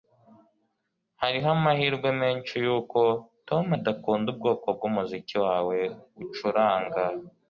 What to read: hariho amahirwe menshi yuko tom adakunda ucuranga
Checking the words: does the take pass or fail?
fail